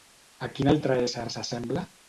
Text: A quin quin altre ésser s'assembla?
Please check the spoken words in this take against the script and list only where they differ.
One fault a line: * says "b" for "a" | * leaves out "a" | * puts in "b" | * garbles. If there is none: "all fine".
* leaves out "quin"